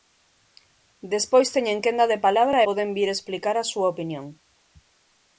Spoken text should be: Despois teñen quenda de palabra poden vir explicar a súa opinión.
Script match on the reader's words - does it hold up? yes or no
yes